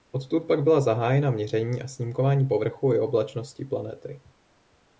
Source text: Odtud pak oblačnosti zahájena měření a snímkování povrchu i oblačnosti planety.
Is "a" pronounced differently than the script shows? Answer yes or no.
no